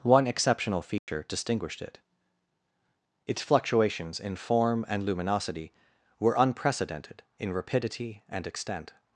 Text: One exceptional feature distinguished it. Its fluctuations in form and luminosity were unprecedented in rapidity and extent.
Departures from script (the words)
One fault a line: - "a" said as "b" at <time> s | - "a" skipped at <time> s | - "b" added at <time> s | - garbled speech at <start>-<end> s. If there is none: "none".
none